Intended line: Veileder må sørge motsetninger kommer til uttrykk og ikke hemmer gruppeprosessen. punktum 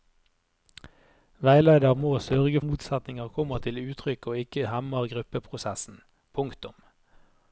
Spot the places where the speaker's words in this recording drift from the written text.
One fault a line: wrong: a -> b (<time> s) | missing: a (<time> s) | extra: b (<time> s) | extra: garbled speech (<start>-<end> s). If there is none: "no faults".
no faults